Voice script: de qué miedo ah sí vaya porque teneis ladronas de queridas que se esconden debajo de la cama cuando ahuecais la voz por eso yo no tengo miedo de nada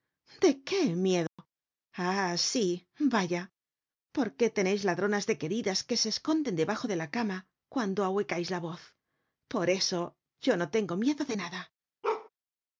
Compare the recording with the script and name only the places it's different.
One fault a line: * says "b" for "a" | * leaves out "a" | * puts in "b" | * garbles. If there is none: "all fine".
all fine